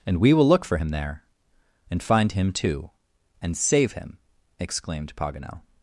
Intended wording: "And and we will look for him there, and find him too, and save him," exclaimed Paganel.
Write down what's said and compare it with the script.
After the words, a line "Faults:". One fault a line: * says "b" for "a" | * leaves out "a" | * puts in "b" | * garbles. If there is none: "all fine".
"And we will look for him there, and find him too, and save him," exclaimed Paganel.
Faults:
* leaves out "and"